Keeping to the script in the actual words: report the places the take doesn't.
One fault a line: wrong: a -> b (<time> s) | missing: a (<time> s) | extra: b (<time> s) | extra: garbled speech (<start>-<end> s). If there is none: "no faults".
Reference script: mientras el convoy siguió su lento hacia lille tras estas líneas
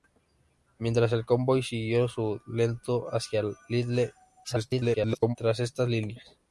extra: garbled speech (4.4-5.4 s)